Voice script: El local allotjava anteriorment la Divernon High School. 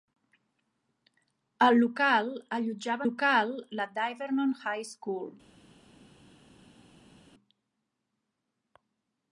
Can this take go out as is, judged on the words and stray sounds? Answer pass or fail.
fail